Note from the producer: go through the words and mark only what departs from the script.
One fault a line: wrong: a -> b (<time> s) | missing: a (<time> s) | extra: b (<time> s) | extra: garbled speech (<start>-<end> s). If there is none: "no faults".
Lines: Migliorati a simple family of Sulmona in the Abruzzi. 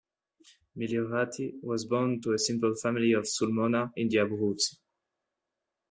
extra: was born to (1.6 s)